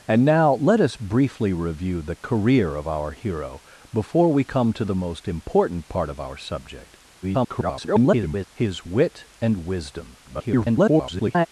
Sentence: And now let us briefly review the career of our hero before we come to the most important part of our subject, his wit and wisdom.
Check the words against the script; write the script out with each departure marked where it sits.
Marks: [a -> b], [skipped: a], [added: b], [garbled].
And now let us briefly review the career of our hero before we come to the most important part of our subject, [garbled] his wit and wisdom. [garbled]